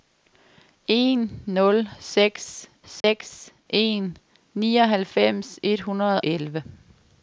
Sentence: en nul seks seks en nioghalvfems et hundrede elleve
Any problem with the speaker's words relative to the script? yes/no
no